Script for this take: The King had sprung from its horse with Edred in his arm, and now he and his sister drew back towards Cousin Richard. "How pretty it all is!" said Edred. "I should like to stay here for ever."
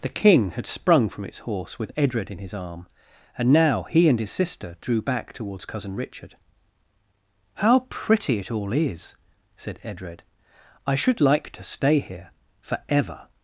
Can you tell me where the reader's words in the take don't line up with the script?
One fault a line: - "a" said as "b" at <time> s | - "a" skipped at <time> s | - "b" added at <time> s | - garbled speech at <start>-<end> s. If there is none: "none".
none